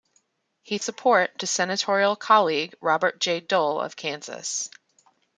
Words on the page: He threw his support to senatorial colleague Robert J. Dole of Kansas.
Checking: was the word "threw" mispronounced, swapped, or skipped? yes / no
yes